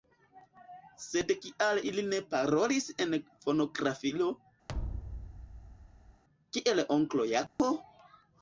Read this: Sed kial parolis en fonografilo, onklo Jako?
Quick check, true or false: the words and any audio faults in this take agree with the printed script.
false